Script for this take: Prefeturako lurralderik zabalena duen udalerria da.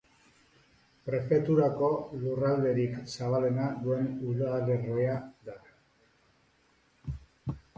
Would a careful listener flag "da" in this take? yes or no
no